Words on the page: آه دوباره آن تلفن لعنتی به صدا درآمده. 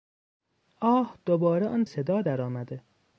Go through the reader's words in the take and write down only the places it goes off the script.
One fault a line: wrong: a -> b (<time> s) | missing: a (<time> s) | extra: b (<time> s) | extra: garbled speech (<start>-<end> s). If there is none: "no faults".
missing: تلفن لعنتی به (1.9 s)